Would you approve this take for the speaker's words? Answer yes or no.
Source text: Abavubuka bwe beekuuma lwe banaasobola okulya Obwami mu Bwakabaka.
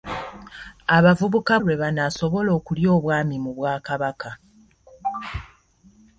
no